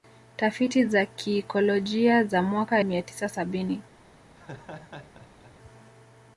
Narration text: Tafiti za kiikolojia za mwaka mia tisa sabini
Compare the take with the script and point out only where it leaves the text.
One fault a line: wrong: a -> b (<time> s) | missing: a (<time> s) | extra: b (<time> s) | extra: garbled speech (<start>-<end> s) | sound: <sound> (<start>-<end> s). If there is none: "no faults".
sound: laugh (4.3-5.5 s)